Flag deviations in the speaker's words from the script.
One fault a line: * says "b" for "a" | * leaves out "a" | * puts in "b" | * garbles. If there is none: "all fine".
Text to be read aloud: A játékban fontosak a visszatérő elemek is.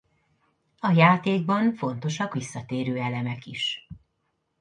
* leaves out "a"